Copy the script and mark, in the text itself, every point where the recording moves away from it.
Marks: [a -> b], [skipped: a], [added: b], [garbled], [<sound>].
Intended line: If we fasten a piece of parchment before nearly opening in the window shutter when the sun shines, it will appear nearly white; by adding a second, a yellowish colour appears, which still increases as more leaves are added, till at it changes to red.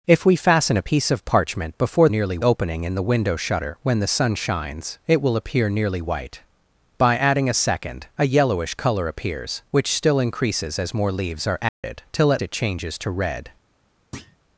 If we fasten a piece of parchment before nearly opening in the window shutter when the sun shines, it will appear nearly white; by adding a second, a yellowish colour appears, which still increases as more leaves are added, [dropout] till at it changes to red. [thud]